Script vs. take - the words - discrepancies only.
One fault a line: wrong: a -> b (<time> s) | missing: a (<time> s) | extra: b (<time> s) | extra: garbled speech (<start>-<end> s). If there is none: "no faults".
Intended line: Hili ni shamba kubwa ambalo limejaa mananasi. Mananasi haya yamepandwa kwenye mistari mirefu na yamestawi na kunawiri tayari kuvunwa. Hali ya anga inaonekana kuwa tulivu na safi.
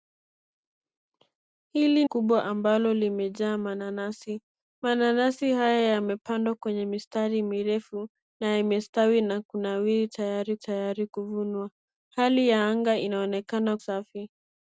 missing: ni shamba (2.0 s)
extra: tayari (10.6 s)
missing: kuwa tulivu na (13.8 s)